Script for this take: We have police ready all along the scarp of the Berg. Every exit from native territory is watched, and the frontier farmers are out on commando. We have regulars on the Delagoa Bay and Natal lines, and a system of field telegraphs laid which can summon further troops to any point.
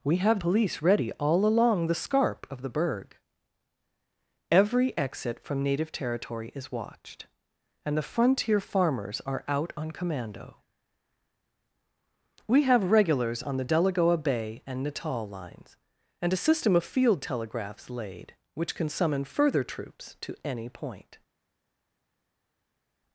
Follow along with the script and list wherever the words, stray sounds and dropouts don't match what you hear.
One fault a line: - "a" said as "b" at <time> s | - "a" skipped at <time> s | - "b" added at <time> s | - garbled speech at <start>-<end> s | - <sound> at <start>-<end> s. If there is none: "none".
none